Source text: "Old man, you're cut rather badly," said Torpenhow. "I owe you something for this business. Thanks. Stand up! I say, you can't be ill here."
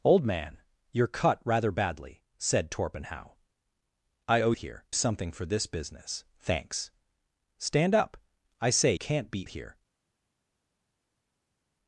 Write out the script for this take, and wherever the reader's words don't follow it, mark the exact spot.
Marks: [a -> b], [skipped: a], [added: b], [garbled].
"Old man, you're cut rather badly," said Torpenhow. "I owe [you -> here] something for this business. Thanks. Stand up! I say, [skipped: you] can't be [skipped: ill] here."